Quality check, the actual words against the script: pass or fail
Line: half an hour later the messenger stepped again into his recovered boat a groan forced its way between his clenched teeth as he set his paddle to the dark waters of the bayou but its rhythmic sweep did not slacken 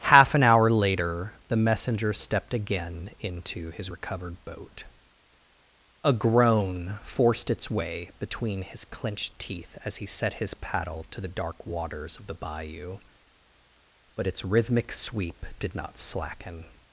pass